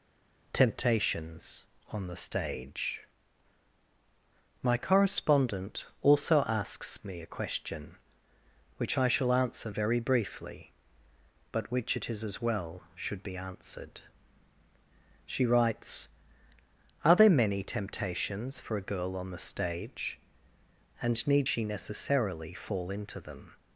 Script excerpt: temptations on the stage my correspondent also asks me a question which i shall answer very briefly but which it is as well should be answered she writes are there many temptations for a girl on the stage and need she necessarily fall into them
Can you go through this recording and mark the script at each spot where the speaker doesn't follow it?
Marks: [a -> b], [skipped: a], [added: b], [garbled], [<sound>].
temptations on the stage my correspondent also asks me a question which i shall answer very briefly but which it is as well should be answered she writes are there many temptations for a girl on the stage and need she necessarily fall into them